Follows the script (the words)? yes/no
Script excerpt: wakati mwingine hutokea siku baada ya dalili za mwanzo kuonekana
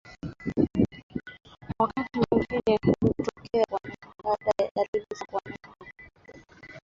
no